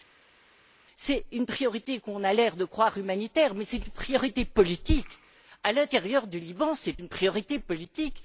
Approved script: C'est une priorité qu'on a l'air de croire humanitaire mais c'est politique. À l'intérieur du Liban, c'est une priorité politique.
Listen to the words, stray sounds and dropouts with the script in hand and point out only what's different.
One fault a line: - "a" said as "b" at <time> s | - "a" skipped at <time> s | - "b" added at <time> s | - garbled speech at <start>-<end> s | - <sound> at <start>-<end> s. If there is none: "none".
- "une priorité" added at 3.8 s